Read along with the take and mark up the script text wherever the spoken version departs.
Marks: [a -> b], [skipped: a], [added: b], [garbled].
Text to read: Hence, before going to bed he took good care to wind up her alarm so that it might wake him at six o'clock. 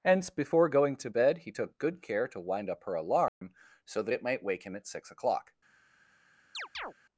Hence, before going to bed he took good care to wind up her alarm so that it might wake him at six o'clock.